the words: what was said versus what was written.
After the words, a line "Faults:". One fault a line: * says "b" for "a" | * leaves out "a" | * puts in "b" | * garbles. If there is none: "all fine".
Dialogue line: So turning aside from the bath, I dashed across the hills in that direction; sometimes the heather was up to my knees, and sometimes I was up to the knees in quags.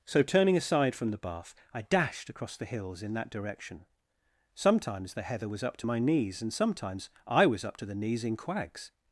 So turning aside from the bath, I dashed across the hills in that direction; sometimes the heather was up to my knees, and sometimes I was up to the knees in quags.
Faults:
all fine